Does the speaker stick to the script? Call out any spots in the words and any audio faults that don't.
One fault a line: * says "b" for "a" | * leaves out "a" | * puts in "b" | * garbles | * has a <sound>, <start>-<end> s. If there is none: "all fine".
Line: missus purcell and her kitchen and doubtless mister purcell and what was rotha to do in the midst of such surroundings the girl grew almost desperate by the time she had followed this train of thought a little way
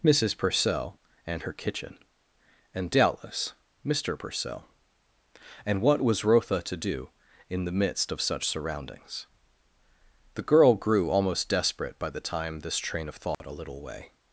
* leaves out "she had followed"
* has a dropout, 13.3-13.4 s